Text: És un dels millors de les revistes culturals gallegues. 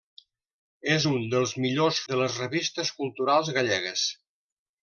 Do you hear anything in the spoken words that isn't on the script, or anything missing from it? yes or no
no